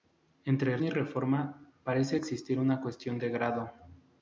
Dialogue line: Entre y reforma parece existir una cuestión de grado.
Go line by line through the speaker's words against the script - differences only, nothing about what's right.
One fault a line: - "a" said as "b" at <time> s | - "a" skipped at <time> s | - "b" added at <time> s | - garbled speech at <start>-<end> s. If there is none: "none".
none